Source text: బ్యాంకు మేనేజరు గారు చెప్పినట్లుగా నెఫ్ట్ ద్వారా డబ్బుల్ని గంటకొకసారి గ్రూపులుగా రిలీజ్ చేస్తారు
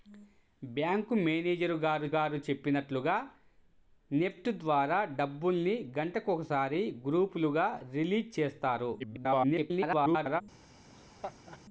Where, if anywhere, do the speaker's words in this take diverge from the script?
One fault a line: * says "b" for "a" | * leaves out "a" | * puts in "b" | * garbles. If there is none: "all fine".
* puts in "గారు"
* garbles